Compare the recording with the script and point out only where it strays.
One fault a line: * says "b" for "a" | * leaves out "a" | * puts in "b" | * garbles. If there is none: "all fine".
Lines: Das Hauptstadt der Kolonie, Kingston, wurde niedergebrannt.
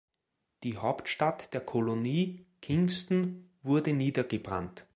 * says "Die" for "Das"